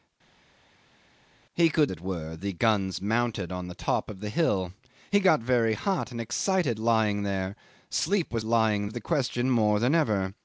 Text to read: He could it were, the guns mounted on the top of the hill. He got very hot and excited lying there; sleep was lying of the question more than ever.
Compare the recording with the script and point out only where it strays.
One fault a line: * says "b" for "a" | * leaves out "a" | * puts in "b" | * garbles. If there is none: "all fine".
all fine